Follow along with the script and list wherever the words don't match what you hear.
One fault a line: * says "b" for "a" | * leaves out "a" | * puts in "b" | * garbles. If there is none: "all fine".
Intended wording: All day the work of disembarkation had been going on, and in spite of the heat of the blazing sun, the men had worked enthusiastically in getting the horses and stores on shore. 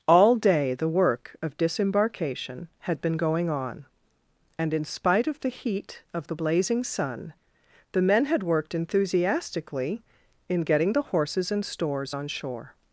all fine